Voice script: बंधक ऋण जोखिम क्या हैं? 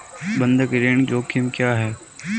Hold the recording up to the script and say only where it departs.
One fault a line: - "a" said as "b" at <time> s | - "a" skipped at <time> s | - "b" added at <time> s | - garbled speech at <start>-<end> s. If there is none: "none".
none